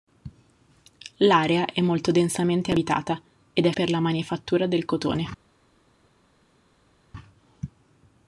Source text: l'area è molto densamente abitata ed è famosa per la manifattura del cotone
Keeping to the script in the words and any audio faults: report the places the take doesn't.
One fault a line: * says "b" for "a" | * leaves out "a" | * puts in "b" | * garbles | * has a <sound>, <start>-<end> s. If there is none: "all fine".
* leaves out "famosa"